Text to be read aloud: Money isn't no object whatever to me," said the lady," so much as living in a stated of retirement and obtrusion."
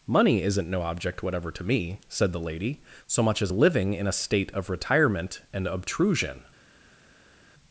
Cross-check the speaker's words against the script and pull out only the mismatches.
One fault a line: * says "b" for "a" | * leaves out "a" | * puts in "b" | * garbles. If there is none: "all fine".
* says "state" for "stated"